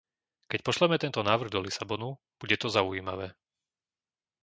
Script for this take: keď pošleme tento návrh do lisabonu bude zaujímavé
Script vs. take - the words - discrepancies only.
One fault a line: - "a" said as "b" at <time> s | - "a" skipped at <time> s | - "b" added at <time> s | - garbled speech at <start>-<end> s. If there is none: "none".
- "to" added at 2.6 s